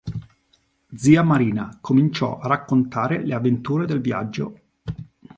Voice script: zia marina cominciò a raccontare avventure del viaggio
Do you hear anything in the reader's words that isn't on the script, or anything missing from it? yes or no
yes